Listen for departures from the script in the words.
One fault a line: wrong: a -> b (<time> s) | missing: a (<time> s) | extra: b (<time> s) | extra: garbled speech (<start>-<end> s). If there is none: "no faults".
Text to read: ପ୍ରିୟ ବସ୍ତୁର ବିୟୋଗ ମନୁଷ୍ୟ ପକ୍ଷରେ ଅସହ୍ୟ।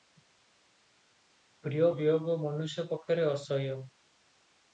missing: ବସ୍ତୁର (1.9 s)